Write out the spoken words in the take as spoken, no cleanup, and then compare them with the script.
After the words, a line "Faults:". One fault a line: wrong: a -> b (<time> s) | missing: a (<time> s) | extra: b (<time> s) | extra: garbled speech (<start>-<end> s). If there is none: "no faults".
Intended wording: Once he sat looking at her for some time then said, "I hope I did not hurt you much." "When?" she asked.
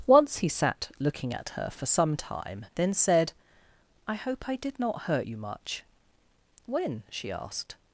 Once he sat looking at her for some time then said, "I hope I did not hurt you much." "When?" she asked.
Faults:
no faults